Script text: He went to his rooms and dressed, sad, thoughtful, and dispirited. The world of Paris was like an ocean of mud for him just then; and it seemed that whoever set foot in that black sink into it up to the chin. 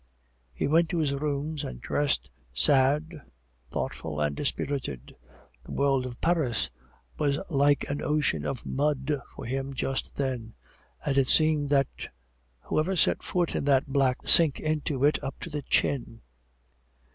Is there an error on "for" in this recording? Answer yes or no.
no